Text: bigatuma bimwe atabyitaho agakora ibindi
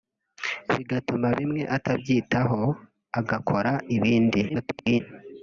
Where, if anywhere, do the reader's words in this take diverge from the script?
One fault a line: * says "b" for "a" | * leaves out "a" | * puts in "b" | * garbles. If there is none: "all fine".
* garbles